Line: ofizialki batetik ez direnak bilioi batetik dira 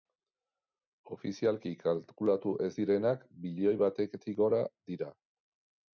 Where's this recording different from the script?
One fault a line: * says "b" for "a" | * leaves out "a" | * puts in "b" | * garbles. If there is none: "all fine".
* says "kalkulatu" for "batetik"
* puts in "gora"